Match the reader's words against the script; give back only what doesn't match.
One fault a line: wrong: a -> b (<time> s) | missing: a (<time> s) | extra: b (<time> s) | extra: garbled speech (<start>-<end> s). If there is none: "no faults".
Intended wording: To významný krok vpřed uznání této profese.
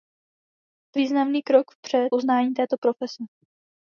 no faults